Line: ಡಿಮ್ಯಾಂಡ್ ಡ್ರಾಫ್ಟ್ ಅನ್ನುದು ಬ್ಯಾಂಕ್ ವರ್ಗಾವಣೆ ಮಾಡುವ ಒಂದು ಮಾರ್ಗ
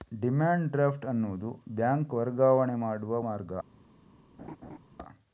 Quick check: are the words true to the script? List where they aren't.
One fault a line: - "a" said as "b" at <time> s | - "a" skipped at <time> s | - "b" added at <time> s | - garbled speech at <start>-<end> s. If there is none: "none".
- "ಒಂದು" skipped at 3.2 s